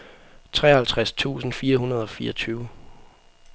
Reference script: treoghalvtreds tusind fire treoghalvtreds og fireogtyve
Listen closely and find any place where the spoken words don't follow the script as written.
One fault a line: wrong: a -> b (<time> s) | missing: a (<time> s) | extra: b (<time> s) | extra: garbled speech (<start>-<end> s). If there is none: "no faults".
wrong: treoghalvtreds -> hundrede (1.8 s)